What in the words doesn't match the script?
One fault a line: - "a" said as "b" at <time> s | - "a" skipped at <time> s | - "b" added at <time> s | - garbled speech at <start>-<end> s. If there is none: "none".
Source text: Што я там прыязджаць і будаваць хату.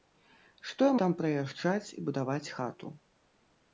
none